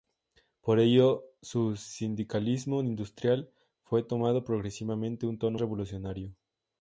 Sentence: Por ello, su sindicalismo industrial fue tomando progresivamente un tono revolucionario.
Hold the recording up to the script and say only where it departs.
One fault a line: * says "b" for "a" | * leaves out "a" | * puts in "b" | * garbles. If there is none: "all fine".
all fine